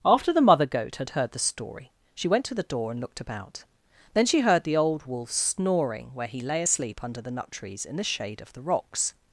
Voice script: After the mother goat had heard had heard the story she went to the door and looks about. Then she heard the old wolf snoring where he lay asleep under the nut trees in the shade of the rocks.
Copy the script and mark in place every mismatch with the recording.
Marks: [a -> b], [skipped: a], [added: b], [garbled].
After the mother goat had heard [skipped: had heard] the story she went to the door and [looks -> looked] about. Then she heard the old wolf snoring where he lay asleep under the nut trees in the shade of the rocks.